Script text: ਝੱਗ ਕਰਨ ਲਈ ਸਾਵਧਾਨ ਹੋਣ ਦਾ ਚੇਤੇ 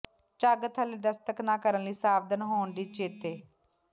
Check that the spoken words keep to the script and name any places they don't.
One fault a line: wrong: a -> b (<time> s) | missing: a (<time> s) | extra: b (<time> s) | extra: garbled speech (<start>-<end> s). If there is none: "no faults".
extra: ਥੱਲੇ ਦਸਤਕ ਨਾ (0.7 s)
wrong: ਦਾ -> ਦੀ (2.7 s)